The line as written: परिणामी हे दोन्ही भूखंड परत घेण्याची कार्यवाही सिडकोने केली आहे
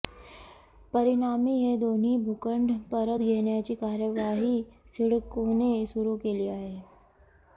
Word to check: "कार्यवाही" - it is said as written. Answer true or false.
true